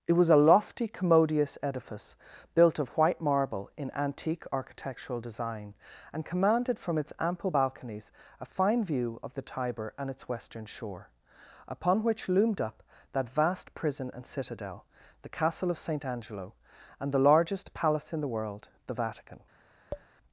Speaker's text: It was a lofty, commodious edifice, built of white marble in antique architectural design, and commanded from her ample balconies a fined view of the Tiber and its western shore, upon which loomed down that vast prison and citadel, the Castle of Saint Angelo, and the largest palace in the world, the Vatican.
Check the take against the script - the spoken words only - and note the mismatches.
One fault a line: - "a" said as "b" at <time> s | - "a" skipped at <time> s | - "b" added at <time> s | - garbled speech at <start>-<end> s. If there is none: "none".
- "her" said as "its" at 7.0 s
- "fined" said as "fine" at 8.4 s
- "down" said as "up" at 12.6 s